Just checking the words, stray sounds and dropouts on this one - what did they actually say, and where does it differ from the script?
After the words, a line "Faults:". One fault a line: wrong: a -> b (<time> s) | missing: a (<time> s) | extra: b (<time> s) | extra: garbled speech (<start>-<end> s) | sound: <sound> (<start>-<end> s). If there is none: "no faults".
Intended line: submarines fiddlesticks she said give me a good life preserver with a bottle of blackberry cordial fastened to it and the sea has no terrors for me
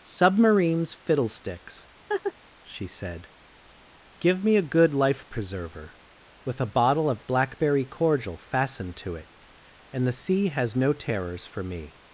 submarines fiddlesticks she said give me a good life preserver with a bottle of blackberry cordial fastened to it and the sea has no terrors for me
Faults:
sound: laugh (2.1-2.3 s)